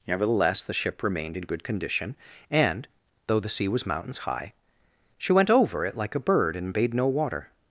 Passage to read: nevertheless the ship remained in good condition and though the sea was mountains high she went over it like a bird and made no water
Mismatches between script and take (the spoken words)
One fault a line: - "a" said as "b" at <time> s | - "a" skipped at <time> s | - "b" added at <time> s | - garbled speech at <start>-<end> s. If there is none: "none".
- "made" said as "bade" at 6.7 s